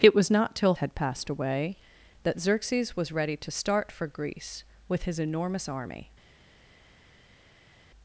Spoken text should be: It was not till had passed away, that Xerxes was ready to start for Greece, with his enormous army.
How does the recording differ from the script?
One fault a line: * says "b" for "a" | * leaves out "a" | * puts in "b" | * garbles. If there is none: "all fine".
all fine